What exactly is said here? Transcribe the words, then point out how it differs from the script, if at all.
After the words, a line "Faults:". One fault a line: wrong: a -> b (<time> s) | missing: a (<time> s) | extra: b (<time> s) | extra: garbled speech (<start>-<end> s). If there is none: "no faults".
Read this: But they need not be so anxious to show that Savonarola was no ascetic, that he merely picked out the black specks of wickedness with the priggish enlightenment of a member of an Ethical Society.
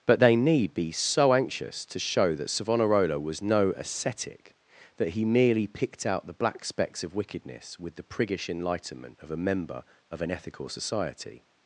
But they need be so anxious to show that Savonarola was no ascetic, that he merely picked out the black specks of wickedness with the priggish enlightenment of a member of an Ethical Society.
Faults:
missing: not (0.7 s)